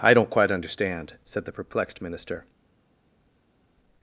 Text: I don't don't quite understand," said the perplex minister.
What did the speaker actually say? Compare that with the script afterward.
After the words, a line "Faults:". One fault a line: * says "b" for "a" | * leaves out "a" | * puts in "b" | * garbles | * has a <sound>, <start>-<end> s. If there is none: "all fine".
I don't quite understand," said the perplexed minister.
Faults:
* leaves out "don't"
* says "perplexed" for "perplex"